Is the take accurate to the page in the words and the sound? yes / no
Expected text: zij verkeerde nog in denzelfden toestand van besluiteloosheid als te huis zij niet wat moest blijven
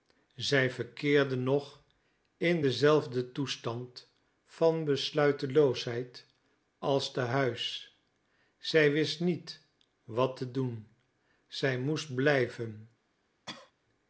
no